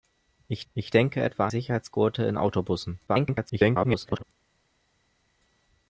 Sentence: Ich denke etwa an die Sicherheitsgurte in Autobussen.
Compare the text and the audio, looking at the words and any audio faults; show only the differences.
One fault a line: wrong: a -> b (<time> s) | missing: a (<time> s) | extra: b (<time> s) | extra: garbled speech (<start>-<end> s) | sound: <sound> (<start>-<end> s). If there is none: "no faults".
extra: ich (0.7 s)
missing: an die (1.5 s)
extra: garbled speech (3.1-4.2 s)